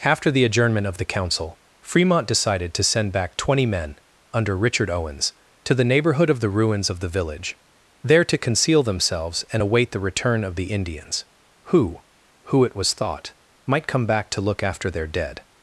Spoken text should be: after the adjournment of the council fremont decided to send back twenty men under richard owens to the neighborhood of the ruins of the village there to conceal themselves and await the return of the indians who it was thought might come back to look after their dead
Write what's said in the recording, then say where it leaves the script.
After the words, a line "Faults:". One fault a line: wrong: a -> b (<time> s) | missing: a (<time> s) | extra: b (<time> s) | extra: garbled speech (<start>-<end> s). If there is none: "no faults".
after the adjournment of the council fremont decided to send back twenty men under richard owens to the neighborhood of the ruins of the village there to conceal themselves and await the return of the indians who who it was thought might come back to look after their dead
Faults:
extra: who (12.4 s)